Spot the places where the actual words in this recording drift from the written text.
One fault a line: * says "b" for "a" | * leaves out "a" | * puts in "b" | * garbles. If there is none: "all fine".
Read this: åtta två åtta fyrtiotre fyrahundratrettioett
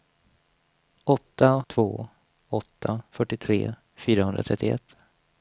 all fine